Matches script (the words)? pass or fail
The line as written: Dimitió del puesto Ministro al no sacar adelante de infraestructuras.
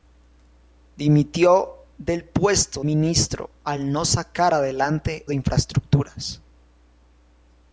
pass